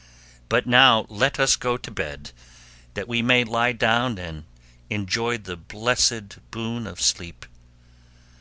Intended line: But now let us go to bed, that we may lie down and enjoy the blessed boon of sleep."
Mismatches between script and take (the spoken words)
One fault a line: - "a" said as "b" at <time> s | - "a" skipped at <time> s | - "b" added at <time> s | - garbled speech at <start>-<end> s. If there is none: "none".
none